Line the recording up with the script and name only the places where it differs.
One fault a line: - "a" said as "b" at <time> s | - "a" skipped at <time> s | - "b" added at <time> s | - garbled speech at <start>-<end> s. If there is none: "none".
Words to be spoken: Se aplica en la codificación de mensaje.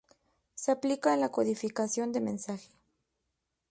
none